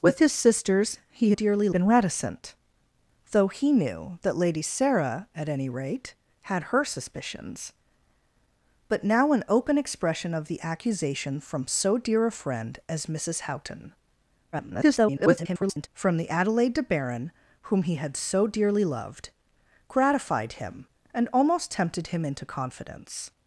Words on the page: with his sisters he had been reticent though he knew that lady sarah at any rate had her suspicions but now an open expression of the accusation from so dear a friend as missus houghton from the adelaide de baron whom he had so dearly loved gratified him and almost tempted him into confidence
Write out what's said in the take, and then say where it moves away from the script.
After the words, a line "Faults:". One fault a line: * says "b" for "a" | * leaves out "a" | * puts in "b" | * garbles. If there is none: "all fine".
with his sisters he dearly been reticent though he knew that lady sarah at any rate had her suspicions but now an open expression of the accusation from so dear a friend as missus houghton [garbled] from the adelaide de baron whom he had so dearly loved gratified him and almost tempted him into confidence
Faults:
* says "dearly" for "had"
* garbles